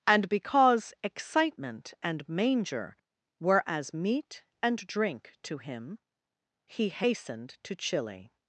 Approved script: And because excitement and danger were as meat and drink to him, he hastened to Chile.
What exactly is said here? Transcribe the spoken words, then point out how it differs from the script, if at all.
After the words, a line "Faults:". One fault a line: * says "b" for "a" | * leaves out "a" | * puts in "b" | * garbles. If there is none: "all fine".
And because excitement and manger were as meat and drink to him, he hastened to Chile.
Faults:
* says "manger" for "danger"